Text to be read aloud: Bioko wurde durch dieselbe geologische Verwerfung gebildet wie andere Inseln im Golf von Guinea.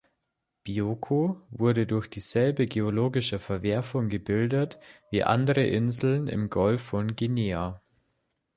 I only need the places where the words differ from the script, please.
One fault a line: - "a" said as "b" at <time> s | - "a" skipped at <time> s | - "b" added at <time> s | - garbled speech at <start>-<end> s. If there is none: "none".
none